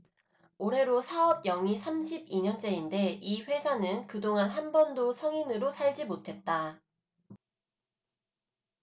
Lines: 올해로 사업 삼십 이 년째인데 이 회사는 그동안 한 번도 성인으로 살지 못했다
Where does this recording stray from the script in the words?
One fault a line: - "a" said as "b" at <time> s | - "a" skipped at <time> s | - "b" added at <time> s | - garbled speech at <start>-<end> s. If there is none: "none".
- "영위" added at 1.5 s